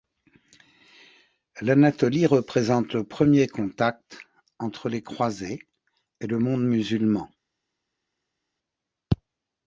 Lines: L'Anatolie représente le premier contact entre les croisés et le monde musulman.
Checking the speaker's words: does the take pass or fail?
pass